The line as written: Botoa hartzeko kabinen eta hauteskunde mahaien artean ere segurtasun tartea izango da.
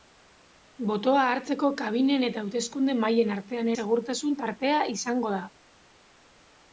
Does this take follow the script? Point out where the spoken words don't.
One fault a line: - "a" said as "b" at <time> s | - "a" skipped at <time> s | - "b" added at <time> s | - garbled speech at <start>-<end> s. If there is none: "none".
- "ere" skipped at 3.7 s